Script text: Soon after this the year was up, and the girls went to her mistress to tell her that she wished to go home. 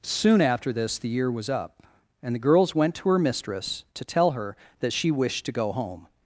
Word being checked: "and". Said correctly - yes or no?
yes